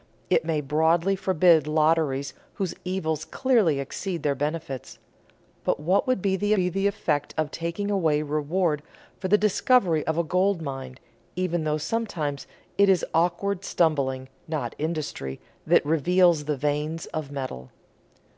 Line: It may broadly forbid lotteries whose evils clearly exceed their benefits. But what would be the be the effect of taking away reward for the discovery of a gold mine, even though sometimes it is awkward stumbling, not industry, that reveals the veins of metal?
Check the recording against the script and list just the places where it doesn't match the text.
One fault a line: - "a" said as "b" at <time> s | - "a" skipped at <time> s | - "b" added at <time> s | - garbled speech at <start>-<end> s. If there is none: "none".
none